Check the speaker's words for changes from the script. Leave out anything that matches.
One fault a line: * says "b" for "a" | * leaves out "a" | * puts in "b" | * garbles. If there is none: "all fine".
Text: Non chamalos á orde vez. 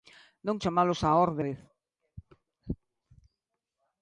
all fine